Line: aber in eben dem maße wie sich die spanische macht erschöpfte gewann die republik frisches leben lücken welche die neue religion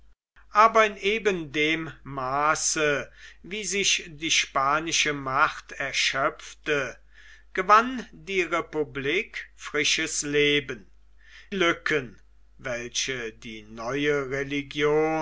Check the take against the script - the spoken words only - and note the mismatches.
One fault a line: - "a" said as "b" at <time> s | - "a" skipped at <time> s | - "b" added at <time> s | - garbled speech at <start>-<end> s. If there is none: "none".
none